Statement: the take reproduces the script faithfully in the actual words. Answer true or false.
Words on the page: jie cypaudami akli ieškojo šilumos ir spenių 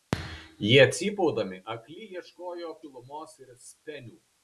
true